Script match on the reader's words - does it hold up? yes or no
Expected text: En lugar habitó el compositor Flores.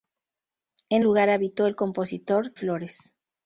yes